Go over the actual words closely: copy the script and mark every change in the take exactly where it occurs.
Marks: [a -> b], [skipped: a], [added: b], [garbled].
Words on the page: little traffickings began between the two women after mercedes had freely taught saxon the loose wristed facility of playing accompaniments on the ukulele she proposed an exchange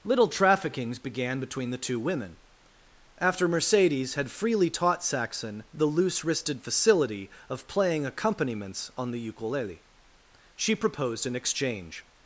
little traffickings began between the two women after mercedes had freely taught saxon the loose wristed facility of playing accompaniments on the ukulele she proposed an exchange